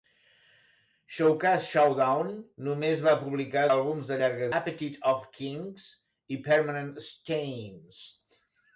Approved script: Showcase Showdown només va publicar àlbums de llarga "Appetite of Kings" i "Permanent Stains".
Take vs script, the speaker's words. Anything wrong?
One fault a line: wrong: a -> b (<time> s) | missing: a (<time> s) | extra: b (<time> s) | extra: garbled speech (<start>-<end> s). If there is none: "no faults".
no faults